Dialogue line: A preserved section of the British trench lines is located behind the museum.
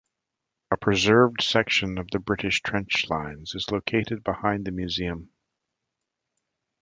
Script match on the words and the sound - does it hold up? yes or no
yes